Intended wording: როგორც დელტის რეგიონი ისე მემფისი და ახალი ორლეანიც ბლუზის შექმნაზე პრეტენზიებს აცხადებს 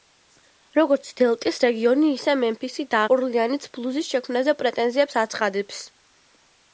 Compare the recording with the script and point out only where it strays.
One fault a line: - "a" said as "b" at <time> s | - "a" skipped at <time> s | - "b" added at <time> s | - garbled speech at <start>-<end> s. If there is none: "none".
- "ახალი" skipped at 3.0 s